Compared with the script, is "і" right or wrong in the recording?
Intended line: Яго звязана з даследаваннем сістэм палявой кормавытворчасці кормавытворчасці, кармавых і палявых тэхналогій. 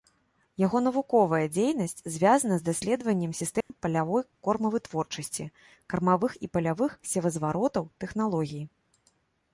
right